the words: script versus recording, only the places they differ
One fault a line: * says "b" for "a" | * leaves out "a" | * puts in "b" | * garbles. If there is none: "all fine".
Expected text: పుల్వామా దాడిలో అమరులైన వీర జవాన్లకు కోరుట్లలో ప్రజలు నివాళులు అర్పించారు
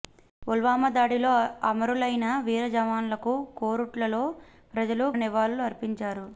all fine